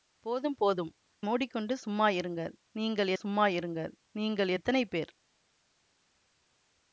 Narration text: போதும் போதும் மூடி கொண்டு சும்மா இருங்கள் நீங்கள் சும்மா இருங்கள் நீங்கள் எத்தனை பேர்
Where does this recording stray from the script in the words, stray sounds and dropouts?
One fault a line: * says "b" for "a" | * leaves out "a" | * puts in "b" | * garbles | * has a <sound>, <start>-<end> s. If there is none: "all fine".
all fine